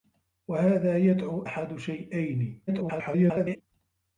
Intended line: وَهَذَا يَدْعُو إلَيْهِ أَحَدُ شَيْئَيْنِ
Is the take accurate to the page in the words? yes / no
no